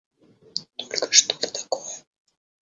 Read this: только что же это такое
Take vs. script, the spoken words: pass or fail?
fail